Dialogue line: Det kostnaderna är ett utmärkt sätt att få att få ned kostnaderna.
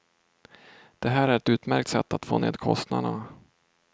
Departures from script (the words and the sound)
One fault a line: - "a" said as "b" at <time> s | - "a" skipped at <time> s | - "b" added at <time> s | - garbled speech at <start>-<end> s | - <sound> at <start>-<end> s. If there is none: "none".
- "kostnaderna" said as "här" at 1.1 s
- "att få" skipped at 2.4 s